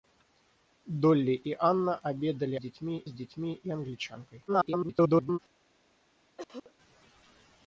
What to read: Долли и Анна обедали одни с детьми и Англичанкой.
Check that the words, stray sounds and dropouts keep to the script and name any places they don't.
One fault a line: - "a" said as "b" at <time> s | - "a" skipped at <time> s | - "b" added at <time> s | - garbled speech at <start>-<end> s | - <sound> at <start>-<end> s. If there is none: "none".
- "одни" said as "детьми" at 2.6 s
- garbled speech at 4.5-5.4 s
- cough at 6.4-6.7 s